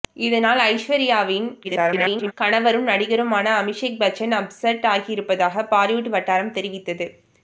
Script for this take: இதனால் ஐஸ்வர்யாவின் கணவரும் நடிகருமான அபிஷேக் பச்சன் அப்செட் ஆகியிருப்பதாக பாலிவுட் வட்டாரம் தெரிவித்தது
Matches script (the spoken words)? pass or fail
fail